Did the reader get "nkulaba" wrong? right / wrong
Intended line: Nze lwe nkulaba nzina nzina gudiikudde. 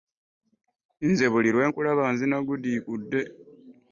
right